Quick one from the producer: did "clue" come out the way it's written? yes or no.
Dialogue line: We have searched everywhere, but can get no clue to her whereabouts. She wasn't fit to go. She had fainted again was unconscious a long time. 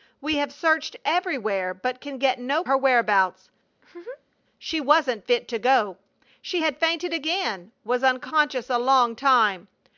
no